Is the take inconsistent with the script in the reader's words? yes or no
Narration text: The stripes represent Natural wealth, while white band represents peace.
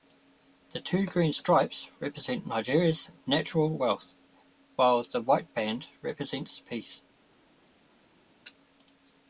yes